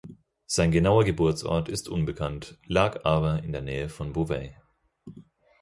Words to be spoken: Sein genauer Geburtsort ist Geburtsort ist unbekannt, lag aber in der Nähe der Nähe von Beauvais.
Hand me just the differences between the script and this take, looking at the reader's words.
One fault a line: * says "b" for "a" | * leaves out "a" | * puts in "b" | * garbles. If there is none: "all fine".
* leaves out "Geburtsort ist"
* leaves out "der Nähe"